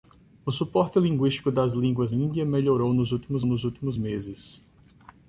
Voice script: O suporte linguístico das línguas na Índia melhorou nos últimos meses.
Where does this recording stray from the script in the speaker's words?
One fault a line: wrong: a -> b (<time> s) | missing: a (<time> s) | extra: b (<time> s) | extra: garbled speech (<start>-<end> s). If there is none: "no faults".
missing: na (2.1 s)
extra: nos últimos (3.5 s)